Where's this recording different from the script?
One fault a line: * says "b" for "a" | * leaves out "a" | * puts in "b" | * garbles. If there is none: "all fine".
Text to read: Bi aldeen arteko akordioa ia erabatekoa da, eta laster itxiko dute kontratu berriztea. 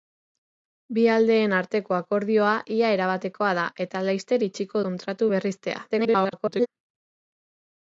* leaves out "dute"
* garbles